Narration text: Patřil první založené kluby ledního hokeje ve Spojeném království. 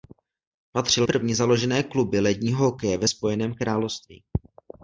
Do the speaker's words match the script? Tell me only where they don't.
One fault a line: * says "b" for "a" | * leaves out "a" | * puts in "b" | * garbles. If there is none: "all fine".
all fine